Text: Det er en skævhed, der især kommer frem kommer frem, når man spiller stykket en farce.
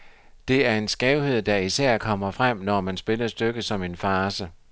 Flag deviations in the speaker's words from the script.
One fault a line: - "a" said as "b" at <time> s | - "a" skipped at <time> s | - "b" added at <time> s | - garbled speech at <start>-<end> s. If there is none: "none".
- "kommer frem" skipped at 2.6 s
- "som" added at 3.6 s